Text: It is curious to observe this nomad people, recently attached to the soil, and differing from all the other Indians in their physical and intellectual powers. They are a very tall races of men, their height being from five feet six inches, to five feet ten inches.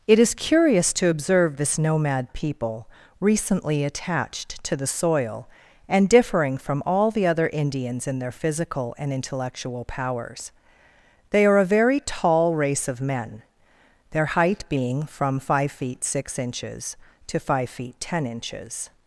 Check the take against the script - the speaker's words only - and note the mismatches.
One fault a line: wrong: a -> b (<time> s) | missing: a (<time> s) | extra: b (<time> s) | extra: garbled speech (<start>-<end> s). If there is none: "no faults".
wrong: races -> race (12.5 s)